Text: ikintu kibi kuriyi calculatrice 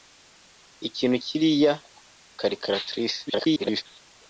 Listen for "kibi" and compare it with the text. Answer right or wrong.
wrong